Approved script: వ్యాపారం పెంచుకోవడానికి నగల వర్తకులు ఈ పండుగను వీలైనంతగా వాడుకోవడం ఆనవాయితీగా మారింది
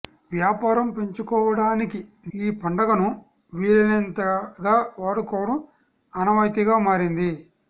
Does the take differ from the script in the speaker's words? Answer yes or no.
yes